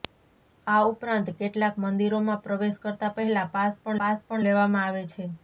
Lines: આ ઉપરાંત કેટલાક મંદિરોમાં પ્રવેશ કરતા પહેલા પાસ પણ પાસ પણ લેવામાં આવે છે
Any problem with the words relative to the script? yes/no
no